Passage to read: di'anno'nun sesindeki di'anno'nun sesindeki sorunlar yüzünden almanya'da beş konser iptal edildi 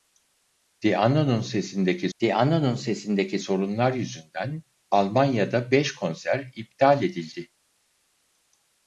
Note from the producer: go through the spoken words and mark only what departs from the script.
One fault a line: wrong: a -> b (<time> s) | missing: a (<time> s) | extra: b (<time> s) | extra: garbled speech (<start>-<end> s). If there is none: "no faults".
no faults